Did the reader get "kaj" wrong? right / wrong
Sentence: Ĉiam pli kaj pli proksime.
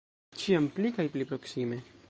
right